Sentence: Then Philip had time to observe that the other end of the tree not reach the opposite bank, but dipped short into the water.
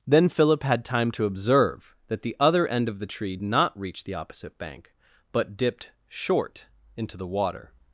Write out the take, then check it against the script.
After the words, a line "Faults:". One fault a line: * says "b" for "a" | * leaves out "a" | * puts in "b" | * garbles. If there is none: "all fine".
Then Philip had time to observe that the other end of the tree not reach the opposite bank, but dipped short into the water.
Faults:
all fine